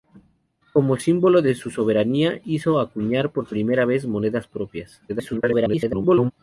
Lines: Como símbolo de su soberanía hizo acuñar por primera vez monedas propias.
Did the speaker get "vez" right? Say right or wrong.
right